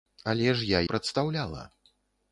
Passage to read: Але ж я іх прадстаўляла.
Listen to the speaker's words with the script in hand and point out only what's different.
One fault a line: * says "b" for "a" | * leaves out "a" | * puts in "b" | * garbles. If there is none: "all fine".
* leaves out "іх"